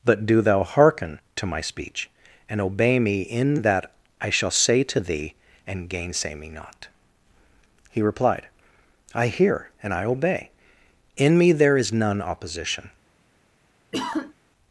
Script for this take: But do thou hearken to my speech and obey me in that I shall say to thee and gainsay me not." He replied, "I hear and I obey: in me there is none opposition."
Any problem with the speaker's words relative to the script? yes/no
no